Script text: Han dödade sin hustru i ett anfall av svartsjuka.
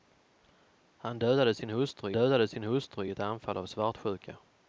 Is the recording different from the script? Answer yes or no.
yes